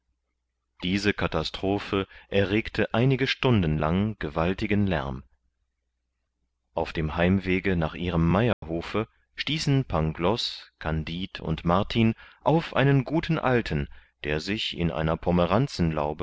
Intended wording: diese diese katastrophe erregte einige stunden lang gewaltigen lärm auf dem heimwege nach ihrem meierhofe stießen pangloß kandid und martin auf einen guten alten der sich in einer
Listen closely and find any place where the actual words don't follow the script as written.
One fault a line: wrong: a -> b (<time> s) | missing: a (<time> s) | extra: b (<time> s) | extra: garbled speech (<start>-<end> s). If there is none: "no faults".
missing: diese (1.1 s)